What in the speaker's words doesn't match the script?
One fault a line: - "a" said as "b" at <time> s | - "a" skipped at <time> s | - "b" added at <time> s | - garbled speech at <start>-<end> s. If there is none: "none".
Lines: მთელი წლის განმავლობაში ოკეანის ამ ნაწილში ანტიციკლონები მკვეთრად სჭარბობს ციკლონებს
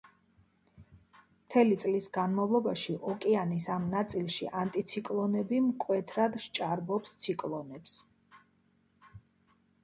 none